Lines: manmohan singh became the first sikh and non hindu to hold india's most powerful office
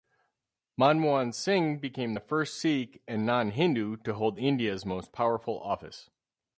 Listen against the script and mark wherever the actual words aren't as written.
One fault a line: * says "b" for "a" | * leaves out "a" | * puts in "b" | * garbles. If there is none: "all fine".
all fine